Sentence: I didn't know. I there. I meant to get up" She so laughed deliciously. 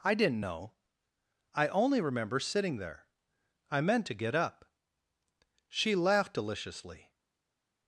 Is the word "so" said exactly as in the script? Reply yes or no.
no